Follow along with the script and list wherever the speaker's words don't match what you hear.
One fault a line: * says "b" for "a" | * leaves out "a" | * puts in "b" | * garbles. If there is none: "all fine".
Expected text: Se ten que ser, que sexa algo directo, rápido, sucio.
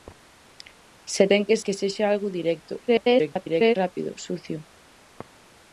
* leaves out "ser"
* garbles